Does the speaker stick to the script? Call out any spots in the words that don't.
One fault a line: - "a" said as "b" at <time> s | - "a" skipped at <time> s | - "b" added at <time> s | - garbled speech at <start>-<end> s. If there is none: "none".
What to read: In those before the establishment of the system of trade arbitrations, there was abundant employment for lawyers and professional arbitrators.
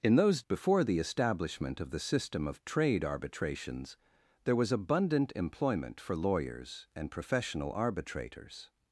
none